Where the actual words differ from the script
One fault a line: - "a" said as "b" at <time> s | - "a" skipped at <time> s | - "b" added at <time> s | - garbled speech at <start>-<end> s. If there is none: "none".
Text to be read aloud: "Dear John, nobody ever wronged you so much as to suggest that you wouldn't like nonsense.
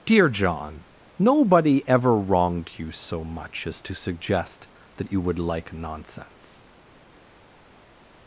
- "wouldn't" said as "would" at 5.2 s